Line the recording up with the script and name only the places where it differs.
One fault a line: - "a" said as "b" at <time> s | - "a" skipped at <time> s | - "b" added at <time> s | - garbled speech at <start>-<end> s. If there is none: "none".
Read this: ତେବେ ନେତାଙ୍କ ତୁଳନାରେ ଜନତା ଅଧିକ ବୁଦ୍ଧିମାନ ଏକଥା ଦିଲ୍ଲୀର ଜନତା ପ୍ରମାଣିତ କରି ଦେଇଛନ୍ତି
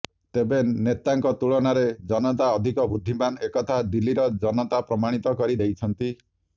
none